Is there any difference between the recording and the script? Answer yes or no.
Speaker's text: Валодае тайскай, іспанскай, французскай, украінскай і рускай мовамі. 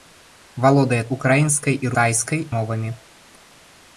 yes